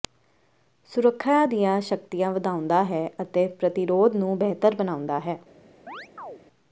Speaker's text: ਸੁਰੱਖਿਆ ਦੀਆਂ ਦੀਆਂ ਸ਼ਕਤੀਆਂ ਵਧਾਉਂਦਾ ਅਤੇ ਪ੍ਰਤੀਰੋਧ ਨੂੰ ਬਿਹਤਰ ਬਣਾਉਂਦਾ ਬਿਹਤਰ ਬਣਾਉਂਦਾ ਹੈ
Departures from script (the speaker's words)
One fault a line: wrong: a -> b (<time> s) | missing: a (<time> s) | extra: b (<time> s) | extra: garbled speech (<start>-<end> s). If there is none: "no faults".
missing: ਦੀਆਂ (1.8 s)
extra: ਹੈ (2.8 s)
missing: ਬਿਹਤਰ ਬਣਾਉਂਦਾ (5.2 s)